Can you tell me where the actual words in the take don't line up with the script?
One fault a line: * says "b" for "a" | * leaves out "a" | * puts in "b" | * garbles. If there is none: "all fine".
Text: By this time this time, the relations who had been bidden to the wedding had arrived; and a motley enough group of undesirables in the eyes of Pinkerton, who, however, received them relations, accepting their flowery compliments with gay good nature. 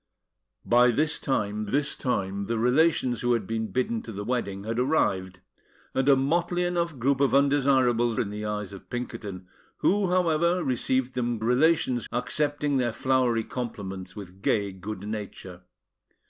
all fine